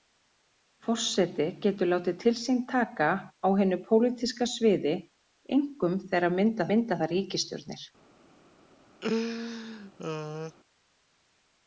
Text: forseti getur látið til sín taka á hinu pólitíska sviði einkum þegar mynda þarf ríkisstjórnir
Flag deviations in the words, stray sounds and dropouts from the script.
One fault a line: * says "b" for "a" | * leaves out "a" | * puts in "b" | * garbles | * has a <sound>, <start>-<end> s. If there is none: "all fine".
* puts in "mynda"
* has a laugh, 9.0-10.6 s